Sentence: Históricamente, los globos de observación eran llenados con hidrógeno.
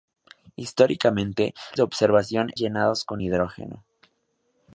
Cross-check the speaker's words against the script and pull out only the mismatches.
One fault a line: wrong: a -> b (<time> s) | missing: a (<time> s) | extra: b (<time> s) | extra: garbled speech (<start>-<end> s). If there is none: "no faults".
missing: los globos (1.5 s)
missing: eran (2.5 s)